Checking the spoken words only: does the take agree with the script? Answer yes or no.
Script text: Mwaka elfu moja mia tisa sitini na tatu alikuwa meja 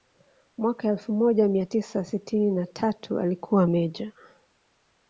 yes